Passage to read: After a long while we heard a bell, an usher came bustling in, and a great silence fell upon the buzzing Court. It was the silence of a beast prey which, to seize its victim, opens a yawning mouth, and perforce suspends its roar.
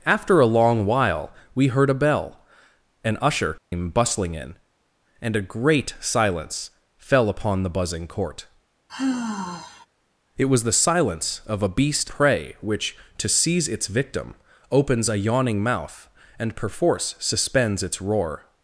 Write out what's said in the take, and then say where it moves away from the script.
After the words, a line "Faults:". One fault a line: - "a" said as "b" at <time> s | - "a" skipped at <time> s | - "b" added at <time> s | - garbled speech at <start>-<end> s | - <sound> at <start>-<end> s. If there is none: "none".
After a long while we heard a bell, an usher came bustling in, and a great silence fell upon the buzzing Court. It was the silence of a beast prey which, to seize its victim, opens a yawning mouth, and perforce suspends its roar.
Faults:
- dropout at 3.6-3.7 s
- sigh at 8.9-9.9 s